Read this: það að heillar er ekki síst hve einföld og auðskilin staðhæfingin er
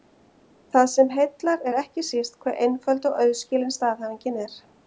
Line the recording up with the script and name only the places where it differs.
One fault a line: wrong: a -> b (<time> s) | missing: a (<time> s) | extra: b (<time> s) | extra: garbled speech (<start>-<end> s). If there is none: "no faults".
wrong: að -> sem (0.9 s)